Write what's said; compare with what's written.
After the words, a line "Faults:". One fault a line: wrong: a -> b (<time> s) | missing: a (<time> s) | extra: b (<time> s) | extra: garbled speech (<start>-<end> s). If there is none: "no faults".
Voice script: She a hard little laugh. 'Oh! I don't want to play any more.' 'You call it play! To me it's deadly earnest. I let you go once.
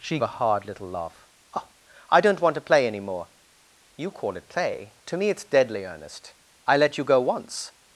She a hard little laugh. 'Oh! I don't want to play any more.' 'You call it play! To me it's deadly earnest. I let you go once.
Faults:
no faults